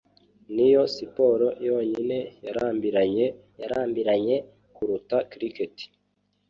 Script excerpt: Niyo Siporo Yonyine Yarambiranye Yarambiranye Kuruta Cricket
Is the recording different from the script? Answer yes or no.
no